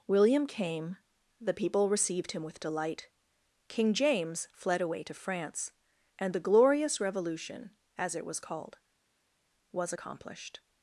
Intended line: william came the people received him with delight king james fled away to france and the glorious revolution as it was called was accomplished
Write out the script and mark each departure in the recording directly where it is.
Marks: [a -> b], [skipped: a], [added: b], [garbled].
william came the people received him with delight king james fled away to france and the glorious revolution as it was called was accomplished